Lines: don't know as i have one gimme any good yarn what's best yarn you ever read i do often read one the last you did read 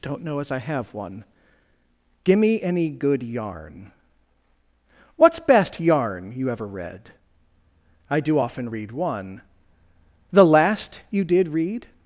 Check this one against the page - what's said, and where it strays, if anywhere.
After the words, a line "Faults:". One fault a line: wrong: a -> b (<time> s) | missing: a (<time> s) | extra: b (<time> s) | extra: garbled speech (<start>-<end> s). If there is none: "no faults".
don't know as i have one gimme any good yarn what's best yarn you ever read i do often read one the last you did read
Faults:
no faults